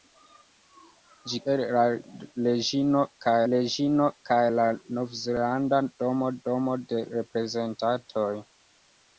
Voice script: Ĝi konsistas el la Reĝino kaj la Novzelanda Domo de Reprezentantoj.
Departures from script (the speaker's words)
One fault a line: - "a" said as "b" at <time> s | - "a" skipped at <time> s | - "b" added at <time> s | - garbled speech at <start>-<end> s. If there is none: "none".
- "konsistas" skipped at 1.4 s
- "Reĝino kaj" added at 3.5 s
- "Domo" added at 6.5 s